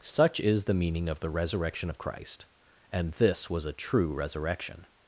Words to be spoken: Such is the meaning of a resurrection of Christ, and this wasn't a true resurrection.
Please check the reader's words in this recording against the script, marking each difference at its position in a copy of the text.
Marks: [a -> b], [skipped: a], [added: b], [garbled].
Such is the meaning of [a -> the] resurrection of Christ, and this [wasn't -> was] a true resurrection.